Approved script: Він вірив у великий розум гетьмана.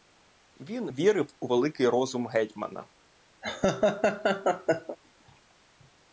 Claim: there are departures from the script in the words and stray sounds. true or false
true